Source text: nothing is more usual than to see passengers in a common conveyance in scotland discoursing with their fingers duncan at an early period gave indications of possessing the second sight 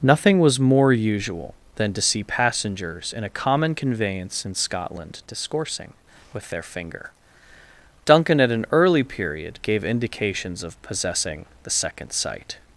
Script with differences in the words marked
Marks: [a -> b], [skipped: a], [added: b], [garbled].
nothing [is -> was] more usual than to see passengers in a common conveyance in scotland discoursing with their [fingers -> finger] duncan at an early period gave indications of possessing the second sight